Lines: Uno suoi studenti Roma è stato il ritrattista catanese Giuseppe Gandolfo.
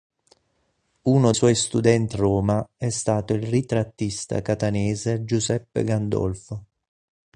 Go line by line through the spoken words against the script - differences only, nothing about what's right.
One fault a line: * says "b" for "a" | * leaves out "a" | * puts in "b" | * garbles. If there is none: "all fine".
all fine